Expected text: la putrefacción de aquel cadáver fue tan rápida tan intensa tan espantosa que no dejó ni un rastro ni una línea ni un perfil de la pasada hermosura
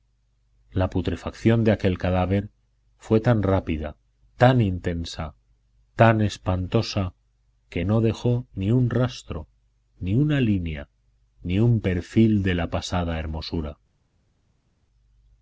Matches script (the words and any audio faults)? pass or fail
pass